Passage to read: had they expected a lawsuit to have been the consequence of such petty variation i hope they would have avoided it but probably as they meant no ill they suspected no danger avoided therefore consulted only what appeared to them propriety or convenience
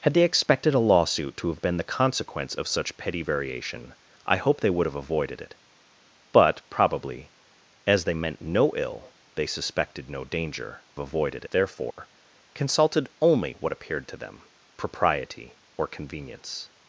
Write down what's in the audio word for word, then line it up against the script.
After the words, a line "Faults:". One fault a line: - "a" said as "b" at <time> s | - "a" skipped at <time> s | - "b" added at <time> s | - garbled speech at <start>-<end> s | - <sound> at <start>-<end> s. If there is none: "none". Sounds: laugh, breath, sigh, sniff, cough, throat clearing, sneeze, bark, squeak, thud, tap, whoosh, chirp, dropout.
had they expected a lawsuit to have been the consequence of such petty variation i hope they would have avoided it but probably as they meant no ill they suspected no danger avoided therefore consulted only what appeared to them propriety or convenience
Faults:
- dropout at 11.9-12.0 s